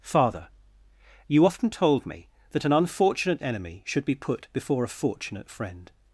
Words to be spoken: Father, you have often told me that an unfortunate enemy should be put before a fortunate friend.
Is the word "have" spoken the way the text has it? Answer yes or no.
no